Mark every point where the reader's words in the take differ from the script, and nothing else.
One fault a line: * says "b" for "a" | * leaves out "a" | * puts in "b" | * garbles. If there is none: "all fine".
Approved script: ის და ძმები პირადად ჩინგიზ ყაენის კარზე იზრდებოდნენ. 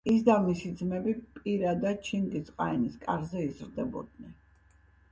* puts in "მისი"